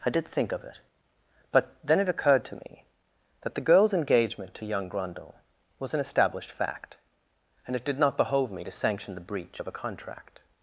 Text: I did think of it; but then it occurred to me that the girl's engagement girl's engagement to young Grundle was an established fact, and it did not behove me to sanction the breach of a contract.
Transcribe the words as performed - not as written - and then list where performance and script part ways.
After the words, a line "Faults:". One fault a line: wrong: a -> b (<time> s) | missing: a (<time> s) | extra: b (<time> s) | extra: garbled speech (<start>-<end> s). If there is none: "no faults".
I did think of it; but then it occurred to me that the girl's engagement to young Grundle was an established fact, and it did not behove me to sanction the breach of a contract.
Faults:
missing: girl's engagement (4.5 s)